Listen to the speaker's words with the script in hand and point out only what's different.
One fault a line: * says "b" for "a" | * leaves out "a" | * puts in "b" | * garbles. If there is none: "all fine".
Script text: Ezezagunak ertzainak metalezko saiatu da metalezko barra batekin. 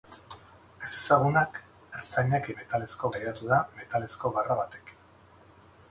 all fine